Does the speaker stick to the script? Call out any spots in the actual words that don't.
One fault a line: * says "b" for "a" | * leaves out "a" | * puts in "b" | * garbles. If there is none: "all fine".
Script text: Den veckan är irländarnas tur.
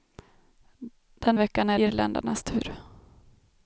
all fine